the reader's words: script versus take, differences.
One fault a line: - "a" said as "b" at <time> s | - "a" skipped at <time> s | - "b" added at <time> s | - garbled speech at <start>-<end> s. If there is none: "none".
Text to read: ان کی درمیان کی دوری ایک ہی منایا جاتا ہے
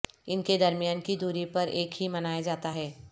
- "کی" said as "کے" at 0.4 s
- "پر" added at 1.4 s